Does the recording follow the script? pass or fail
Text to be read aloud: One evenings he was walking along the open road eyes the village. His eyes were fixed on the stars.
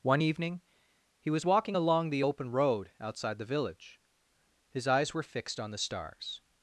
fail